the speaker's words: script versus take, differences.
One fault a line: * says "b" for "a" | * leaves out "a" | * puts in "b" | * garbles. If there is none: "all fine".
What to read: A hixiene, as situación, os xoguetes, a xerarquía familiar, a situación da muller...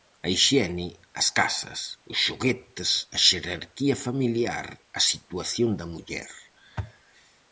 * says "casas" for "situación"